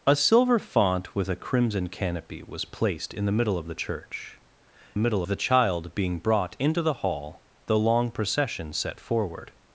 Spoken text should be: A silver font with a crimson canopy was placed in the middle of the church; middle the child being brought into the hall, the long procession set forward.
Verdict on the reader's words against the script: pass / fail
pass